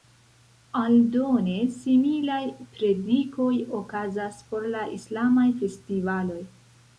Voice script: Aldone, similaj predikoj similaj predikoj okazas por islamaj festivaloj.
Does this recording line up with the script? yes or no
no